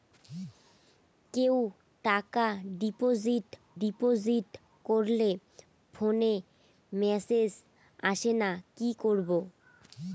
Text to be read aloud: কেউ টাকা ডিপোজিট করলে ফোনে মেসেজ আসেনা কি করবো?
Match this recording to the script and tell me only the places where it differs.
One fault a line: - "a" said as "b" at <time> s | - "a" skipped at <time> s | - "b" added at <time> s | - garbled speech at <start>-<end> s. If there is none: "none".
- "ডিপোজিট" added at 3.8 s